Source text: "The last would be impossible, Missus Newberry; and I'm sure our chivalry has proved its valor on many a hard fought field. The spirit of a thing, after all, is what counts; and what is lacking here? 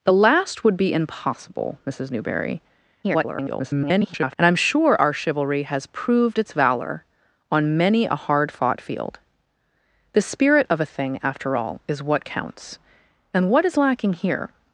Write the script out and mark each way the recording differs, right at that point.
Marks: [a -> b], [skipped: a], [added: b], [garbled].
"The last would be impossible, Missus Newberry; [garbled] and I'm sure our chivalry has proved its valor on many a hard fought field. The spirit of a thing, after all, is what counts; and what is lacking here?